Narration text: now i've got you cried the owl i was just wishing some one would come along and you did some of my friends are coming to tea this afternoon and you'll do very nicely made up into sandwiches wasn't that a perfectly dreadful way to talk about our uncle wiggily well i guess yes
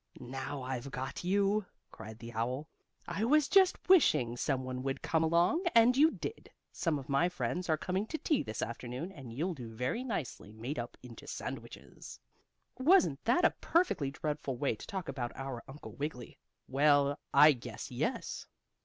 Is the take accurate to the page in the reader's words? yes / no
yes